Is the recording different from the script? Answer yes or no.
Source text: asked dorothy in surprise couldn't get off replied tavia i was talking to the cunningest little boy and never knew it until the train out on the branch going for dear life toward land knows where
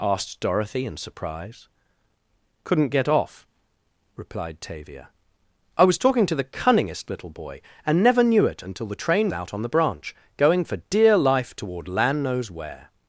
no